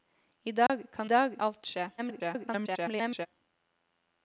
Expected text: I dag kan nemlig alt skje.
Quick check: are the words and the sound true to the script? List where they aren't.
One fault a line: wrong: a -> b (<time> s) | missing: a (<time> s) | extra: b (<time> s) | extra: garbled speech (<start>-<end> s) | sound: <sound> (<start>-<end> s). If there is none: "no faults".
sound: dropout (0.7-0.7 s)
wrong: nemlig -> dag (1.0 s)
extra: garbled speech (2.0-3.3 s)